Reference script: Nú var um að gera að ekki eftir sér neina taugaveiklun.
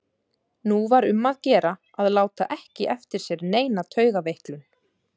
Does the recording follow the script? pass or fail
fail